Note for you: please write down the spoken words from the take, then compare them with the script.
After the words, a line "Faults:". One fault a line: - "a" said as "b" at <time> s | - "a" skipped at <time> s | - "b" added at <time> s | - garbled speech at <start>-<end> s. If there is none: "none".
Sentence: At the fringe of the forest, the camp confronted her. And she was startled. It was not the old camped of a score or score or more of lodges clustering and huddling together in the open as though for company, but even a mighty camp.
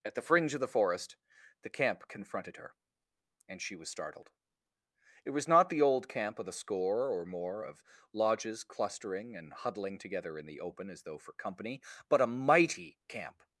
At the fringe of the forest, the camp confronted her. And she was startled. It was not the old camp of a score or more of lodges clustering and huddling together in the open as though for company, but a mighty camp.
Faults:
- "camped" said as "camp" at 6.1 s
- "score or" skipped at 7.2 s
- "even" skipped at 12.2 s